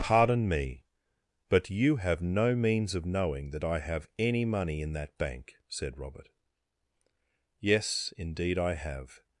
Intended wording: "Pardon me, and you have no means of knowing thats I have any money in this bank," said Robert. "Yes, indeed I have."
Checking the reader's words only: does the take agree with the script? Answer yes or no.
no